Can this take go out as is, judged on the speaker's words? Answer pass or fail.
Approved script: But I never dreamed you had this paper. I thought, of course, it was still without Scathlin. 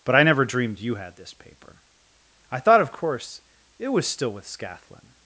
fail